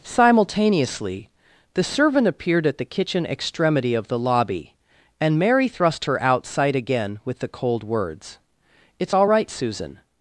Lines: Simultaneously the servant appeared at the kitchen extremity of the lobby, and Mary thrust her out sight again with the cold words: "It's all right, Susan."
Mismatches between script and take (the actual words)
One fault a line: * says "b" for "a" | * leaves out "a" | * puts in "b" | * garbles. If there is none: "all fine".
all fine